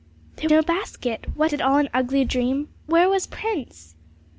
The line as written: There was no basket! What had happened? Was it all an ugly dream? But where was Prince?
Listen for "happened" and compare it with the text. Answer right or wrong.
wrong